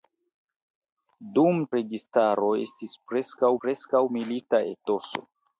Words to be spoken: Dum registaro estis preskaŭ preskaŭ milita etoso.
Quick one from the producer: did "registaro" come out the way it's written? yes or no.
yes